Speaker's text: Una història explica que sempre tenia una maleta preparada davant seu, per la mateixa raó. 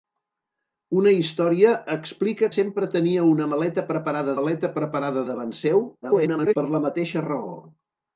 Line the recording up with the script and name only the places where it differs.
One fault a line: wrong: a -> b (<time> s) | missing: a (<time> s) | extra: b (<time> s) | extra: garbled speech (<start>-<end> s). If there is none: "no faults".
missing: que (2.5 s)
extra: maleta preparada (4.4 s)
extra: garbled speech (6.0-6.6 s)